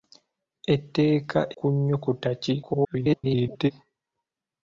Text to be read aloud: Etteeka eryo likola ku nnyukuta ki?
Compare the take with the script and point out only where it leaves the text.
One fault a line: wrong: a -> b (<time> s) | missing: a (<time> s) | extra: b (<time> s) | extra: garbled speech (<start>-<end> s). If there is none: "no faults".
missing: eryo likola (1.4 s)
extra: garbled speech (2.6-3.7 s)